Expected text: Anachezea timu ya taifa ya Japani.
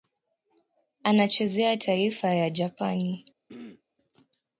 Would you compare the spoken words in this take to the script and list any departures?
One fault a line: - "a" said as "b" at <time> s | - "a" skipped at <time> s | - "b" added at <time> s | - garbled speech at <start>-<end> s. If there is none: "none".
- "timu ya" skipped at 1.8 s